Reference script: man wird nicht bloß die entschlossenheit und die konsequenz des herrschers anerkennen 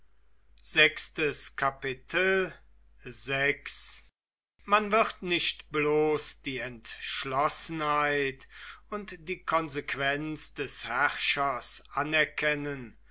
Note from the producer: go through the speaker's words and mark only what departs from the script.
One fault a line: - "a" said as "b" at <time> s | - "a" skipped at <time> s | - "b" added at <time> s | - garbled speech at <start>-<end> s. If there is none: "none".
none